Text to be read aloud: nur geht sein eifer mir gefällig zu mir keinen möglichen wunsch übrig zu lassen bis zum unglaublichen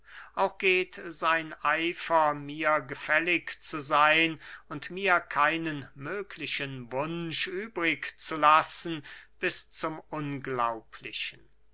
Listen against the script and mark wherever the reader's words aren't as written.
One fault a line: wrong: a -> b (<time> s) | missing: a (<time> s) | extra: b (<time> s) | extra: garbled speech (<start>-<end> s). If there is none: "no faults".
wrong: nur -> auch (0.3 s)
extra: seyn und (3.8 s)